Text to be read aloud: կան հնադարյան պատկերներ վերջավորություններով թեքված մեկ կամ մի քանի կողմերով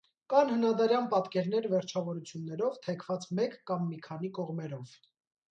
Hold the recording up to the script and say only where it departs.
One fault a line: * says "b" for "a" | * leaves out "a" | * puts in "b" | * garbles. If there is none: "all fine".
all fine